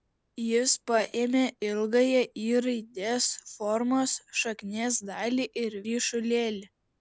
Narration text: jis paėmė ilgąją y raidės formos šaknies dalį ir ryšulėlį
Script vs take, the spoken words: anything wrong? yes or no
no